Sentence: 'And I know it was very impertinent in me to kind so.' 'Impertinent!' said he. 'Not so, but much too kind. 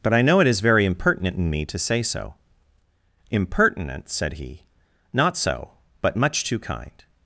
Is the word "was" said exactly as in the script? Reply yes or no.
no